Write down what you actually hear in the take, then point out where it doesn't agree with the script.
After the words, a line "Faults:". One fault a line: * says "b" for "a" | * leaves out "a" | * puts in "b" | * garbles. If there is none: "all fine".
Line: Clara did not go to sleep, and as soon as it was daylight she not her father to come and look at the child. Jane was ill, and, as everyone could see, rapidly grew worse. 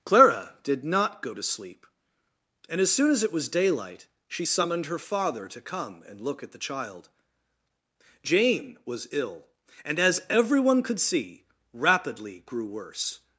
Clara did not go to sleep, and as soon as it was daylight she summoned her father to come and look at the child. Jane was ill, and, as everyone could see, rapidly grew worse.
Faults:
* says "summoned" for "not"